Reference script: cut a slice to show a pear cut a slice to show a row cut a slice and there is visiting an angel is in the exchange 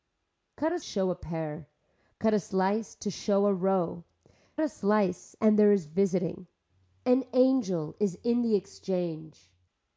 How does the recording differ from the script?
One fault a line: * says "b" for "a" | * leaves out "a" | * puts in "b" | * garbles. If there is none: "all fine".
* leaves out "slice to"
* leaves out "cut"